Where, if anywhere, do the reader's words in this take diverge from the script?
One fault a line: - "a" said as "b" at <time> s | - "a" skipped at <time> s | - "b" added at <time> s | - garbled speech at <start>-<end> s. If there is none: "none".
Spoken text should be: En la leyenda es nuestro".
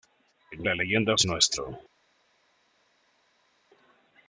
none